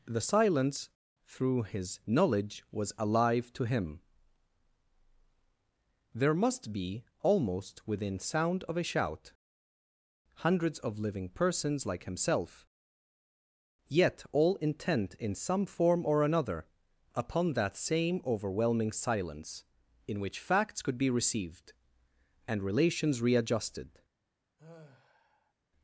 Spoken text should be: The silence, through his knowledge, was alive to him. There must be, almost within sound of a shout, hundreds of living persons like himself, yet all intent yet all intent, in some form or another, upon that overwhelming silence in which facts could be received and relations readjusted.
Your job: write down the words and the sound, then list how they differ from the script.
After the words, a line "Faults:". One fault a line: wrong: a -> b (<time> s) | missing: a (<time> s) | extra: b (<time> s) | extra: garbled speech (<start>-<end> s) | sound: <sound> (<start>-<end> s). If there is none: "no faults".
The silence, through his knowledge, was alive to him. There must be, almost within sound of a shout, hundreds of living persons like himself, yet all intent, in some form or another, upon that same overwhelming silence in which facts could be received and relations readjusted.
Faults:
missing: yet all intent (15.1 s)
extra: same (17.8 s)
sound: sigh (24.6-25.5 s)